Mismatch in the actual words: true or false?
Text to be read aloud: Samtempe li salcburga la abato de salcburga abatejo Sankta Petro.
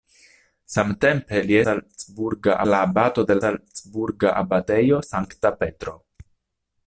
false